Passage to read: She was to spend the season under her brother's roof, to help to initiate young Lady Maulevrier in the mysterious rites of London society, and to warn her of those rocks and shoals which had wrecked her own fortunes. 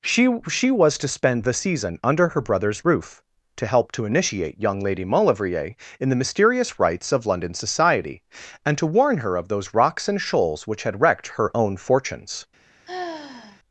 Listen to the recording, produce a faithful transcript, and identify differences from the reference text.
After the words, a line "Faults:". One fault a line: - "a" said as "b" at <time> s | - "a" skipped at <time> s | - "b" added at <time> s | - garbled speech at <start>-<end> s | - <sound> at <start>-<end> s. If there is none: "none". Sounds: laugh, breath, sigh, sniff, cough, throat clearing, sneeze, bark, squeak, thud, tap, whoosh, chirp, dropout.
She she was to spend the season under her brother's roof, to help to initiate young Lady Maulevrier in the mysterious rites of London society, and to warn her of those rocks and shoals which had wrecked her own fortunes.
Faults:
- "she" added at 0.5 s
- sigh at 12.9-13.6 s